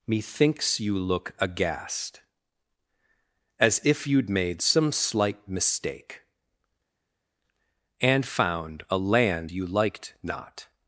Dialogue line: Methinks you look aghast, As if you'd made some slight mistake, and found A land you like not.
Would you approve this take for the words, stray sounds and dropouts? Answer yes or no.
no